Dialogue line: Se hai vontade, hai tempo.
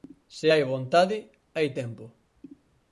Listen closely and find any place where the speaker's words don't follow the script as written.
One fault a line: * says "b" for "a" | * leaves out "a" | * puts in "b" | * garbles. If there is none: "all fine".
all fine